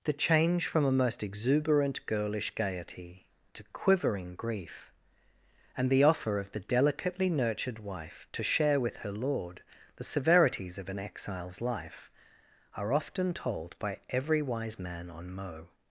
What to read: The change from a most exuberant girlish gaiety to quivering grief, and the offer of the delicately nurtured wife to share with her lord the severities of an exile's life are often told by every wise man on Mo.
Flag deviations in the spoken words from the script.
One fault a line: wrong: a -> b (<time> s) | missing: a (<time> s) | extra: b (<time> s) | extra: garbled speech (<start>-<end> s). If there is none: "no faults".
no faults